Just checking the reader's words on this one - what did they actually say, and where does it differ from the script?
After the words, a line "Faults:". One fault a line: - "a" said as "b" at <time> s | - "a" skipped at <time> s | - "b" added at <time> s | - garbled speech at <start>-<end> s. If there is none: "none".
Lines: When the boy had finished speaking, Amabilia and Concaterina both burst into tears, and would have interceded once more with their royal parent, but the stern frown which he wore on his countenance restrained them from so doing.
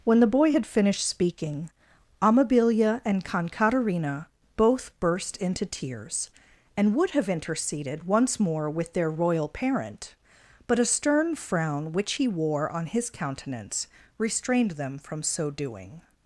When the boy had finished speaking, Amabilia and Concaterina both burst into tears, and would have interceded once more with their royal parent, but a stern frown which he wore on his countenance restrained them from so doing.
Faults:
- "the" said as "a" at 10.8 s